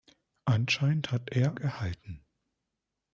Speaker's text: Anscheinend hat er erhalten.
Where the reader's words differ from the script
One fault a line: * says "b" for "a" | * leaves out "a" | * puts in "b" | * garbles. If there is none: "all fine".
all fine